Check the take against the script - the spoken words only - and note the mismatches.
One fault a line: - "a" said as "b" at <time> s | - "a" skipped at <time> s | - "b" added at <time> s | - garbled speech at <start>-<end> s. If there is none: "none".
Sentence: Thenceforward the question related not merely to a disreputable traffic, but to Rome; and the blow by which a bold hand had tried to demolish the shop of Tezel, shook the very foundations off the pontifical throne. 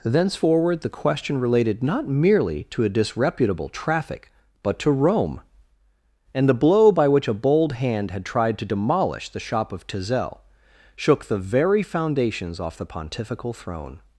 none